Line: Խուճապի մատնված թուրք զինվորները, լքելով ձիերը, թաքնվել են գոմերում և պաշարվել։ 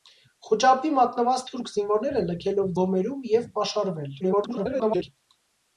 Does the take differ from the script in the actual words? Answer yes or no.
yes